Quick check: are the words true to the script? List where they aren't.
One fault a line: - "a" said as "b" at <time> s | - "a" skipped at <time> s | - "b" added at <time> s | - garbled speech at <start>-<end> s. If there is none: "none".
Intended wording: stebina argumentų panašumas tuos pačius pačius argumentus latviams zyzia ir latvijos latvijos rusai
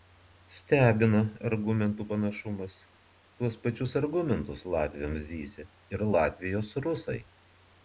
- "pačius" skipped at 4.0 s
- "latvijos" skipped at 6.8 s